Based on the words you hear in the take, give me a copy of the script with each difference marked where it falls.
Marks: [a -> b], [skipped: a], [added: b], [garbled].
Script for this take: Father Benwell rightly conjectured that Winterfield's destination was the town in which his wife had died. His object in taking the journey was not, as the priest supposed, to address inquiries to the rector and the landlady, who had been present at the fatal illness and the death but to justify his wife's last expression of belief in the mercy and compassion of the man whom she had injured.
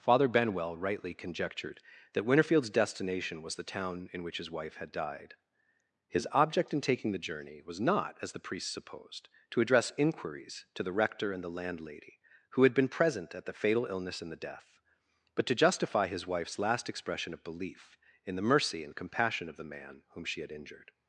Father Benwell rightly conjectured that Winterfield's destination was the town in which his wife had died. His object in taking the journey was not, as the priest supposed, to address inquiries to the rector and the landlady, who had been present at the fatal illness and the death but to justify his wife's last expression of belief in the mercy and compassion of the man whom she had injured.